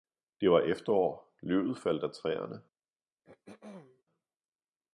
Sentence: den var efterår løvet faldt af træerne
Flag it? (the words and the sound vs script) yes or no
yes